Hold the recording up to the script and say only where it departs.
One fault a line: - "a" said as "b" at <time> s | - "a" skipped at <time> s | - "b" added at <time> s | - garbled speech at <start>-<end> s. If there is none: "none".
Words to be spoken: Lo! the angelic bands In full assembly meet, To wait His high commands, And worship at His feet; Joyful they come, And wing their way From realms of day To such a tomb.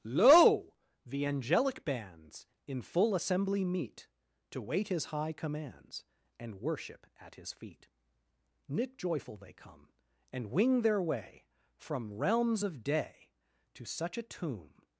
- "knit" added at 8.7 s